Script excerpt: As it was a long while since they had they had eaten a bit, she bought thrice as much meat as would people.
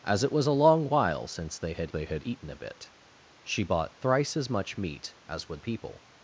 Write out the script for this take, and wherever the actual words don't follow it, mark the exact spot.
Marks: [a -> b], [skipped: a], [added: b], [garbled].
As it was a long while since they had they had eaten a bit, she bought thrice as much meat as would people.